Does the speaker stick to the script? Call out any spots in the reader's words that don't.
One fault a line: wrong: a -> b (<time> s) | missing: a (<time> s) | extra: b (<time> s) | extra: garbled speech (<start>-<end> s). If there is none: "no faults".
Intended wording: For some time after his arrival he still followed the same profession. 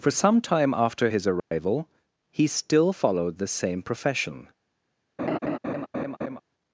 no faults